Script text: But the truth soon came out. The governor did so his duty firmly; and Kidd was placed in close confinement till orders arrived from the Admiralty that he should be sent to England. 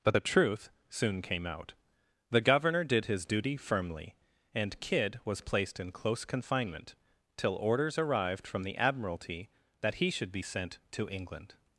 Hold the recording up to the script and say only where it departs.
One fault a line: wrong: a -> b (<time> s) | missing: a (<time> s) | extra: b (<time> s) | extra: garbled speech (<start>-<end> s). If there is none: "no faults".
missing: so (3.1 s)